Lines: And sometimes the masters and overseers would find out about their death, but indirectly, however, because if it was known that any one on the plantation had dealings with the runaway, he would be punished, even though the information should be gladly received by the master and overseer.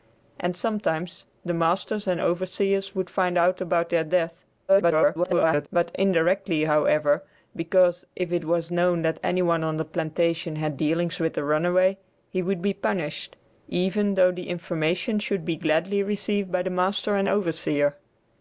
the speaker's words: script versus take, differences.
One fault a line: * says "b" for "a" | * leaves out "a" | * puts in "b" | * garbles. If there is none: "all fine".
* garbles